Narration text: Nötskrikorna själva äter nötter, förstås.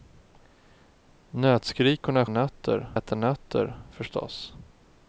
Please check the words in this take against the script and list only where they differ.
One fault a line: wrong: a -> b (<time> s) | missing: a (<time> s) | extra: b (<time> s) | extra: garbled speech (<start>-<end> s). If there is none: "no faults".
wrong: själva -> nötter (2.3 s)